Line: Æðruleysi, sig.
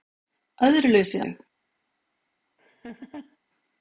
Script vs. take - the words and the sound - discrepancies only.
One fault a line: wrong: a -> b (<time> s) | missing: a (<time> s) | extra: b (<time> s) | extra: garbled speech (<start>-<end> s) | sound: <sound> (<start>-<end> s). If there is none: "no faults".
sound: laugh (2.6-3.4 s)